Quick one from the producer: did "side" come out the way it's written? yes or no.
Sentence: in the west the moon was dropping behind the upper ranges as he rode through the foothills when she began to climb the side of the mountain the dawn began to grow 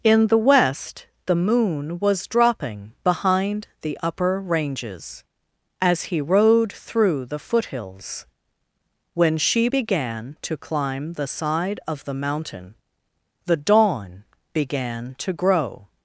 yes